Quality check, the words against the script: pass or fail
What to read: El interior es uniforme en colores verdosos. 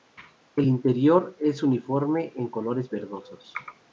pass